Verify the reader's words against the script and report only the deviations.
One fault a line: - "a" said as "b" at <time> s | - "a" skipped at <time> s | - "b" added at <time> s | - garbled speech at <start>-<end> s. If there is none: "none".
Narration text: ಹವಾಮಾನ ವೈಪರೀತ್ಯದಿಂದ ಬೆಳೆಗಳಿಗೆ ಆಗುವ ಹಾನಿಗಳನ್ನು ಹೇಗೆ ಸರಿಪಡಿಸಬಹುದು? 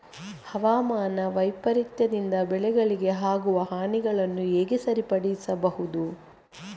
none